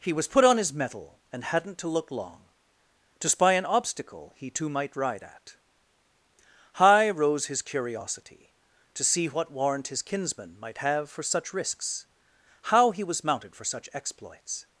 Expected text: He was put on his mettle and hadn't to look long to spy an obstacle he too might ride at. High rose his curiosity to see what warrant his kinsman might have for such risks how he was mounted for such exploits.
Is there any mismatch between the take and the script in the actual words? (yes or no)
no